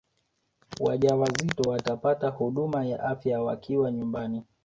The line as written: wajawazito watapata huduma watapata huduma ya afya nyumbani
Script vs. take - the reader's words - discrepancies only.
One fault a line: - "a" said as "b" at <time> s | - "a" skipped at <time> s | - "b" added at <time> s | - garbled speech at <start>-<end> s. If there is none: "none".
- "watapata huduma" skipped at 2.8 s
- "wakiwa" added at 3.4 s